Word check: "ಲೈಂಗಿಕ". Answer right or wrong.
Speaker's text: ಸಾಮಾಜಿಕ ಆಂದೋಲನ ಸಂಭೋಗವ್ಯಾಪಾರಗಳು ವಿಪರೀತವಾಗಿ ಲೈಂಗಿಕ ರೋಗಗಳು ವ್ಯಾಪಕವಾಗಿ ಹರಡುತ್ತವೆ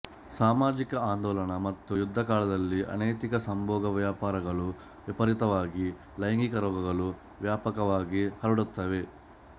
right